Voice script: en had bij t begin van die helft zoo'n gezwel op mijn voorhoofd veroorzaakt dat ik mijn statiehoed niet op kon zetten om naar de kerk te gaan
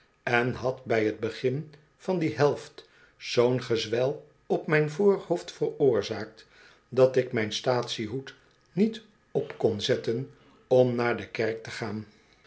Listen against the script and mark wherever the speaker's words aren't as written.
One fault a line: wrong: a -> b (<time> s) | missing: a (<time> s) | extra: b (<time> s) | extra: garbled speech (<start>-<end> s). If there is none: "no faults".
no faults